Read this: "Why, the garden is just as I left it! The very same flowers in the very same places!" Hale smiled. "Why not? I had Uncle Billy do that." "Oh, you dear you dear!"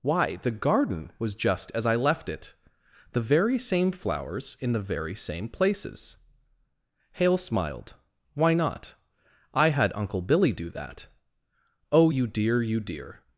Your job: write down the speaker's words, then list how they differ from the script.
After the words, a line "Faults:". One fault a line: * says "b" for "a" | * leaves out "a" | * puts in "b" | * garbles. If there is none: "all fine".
"Why, the garden was just as I left it! The very same flowers in the very same places!" Hale smiled. "Why not? I had Uncle Billy do that." "Oh, you dear you dear!"
Faults:
* says "was" for "is"